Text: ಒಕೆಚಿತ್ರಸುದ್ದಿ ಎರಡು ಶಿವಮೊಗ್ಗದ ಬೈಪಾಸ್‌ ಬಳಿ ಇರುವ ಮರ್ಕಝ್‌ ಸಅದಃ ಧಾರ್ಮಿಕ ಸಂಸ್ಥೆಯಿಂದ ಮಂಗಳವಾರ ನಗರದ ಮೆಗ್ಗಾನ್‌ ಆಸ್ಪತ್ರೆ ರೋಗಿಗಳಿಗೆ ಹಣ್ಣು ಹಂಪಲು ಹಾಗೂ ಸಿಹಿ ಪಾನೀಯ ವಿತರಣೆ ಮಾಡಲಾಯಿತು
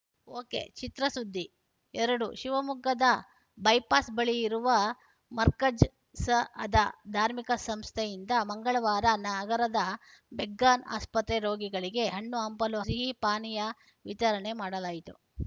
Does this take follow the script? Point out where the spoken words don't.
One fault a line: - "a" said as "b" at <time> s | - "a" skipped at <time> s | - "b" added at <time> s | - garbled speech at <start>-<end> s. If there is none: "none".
- "ಹಾಗೂ" skipped at 12.8 s